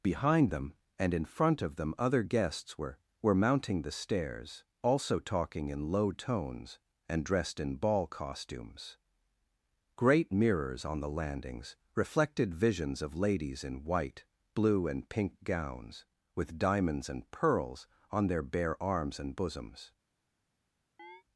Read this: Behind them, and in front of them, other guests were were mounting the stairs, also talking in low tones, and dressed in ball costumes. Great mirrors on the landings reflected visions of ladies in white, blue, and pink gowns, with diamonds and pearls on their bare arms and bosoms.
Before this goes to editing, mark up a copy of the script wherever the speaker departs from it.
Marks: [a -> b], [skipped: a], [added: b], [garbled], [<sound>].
Behind them, and in front of them, other guests were were mounting the stairs, also talking in low tones, and dressed in ball costumes. Great mirrors on the landings reflected visions of ladies in white, blue, and pink gowns, with diamonds and pearls on their bare arms and bosoms. [chirp]